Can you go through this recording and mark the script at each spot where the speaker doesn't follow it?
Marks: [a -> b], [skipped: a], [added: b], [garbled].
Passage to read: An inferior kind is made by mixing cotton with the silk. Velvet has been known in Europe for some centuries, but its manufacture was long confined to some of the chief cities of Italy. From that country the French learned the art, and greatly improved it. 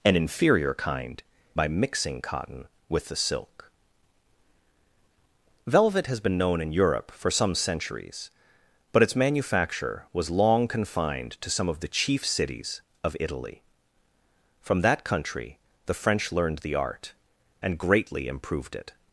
An inferior kind [skipped: is made] by mixing cotton with the silk. Velvet has been known in Europe for some centuries, but its manufacture was long confined to some of the chief cities of Italy. From that country the French learned the art, and greatly improved it.